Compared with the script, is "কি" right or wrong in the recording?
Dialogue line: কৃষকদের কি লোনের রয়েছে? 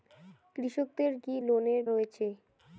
right